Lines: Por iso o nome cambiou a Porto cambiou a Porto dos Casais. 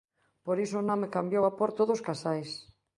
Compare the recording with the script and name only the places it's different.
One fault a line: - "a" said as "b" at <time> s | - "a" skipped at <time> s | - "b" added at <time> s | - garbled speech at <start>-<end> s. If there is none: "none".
- "cambiou a Porto" skipped at 1.8 s